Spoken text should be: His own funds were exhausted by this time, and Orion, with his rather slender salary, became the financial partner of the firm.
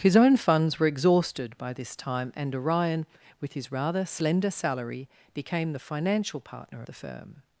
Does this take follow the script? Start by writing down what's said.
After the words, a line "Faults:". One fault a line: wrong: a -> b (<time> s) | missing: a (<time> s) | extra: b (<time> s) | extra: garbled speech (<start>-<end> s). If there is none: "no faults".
His own funds were exhausted by this time, and Orion, with his rather slender salary, became the financial partner the firm.
Faults:
missing: of (6.8 s)